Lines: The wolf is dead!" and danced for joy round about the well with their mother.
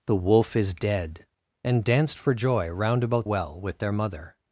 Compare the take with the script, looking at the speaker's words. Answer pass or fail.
fail